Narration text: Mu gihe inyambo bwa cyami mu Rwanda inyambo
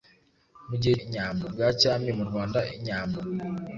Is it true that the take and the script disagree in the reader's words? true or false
false